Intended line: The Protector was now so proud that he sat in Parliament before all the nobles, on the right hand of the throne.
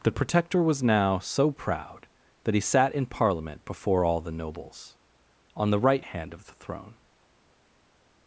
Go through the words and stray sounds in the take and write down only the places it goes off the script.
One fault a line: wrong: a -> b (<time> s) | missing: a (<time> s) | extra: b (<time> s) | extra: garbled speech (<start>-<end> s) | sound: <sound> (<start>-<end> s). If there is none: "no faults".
no faults